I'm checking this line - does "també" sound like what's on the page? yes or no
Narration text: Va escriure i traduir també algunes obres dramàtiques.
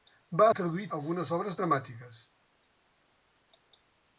no